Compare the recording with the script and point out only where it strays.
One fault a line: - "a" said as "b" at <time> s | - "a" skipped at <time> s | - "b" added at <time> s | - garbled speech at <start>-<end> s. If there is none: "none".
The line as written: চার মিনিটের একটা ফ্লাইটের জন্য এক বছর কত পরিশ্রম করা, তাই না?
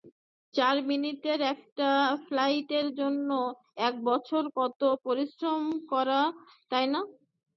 none